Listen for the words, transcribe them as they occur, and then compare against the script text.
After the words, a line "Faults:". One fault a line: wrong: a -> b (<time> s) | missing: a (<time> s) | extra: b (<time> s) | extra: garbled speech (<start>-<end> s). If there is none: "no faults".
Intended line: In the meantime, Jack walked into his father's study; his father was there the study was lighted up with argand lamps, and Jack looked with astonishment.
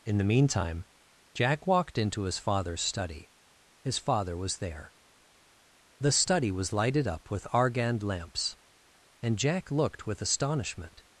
In the meantime, Jack walked into his father's study; his father was there the study was lighted up with argand lamps, and Jack looked with astonishment.
Faults:
no faults